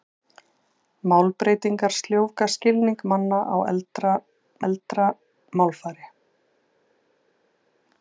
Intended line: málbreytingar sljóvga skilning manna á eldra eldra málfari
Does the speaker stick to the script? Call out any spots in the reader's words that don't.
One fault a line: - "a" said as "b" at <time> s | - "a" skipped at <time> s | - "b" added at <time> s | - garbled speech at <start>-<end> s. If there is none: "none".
none